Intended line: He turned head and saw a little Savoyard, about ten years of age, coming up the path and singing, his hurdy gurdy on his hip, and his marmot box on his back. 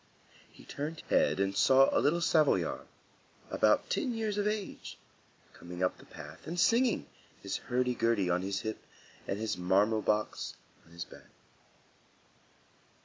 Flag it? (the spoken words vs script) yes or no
no